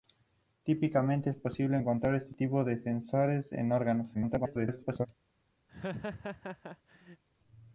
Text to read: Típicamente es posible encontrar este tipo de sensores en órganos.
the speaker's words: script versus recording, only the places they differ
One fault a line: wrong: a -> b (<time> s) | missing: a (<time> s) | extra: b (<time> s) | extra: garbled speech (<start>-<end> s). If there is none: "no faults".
extra: garbled speech (4.1-5.1 s)